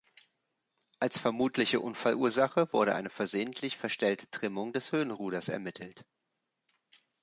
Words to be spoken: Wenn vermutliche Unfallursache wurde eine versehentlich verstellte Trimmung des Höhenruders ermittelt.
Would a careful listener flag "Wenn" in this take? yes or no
yes